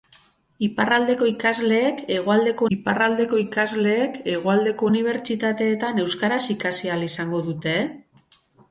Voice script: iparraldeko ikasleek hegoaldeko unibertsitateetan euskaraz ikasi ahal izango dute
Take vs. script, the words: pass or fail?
fail